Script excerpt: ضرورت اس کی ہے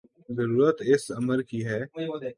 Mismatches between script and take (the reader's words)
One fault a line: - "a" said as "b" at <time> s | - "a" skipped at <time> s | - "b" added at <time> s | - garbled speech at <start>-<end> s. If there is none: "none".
- "امر" added at 1.1 s